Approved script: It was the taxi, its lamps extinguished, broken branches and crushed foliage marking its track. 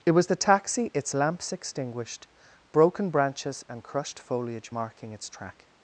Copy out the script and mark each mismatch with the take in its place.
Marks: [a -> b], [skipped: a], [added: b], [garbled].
It was the taxi, its lamps extinguished, broken branches and crushed foliage marking its track.